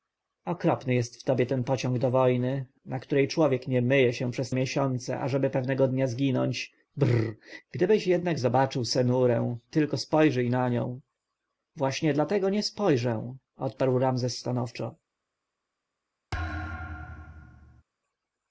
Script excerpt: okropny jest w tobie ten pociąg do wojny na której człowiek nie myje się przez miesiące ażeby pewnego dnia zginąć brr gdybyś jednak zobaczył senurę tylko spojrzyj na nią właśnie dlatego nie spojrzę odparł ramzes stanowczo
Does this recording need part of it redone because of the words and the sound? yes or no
yes